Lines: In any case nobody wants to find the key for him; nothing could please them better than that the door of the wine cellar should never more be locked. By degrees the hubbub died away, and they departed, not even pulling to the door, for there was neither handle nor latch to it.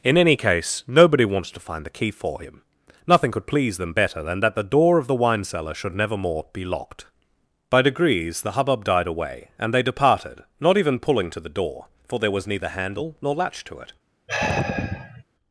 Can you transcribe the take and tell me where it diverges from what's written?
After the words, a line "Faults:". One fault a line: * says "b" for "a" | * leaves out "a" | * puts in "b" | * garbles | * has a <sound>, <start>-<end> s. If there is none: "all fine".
In any case nobody wants to find the key for him; nothing could please them better than that the door of the wine cellar should never more be locked. By degrees the hubbub died away, and they departed, not even pulling to the door, for there was neither handle nor latch to it.
Faults:
* has a sigh, 14.3-15.2 s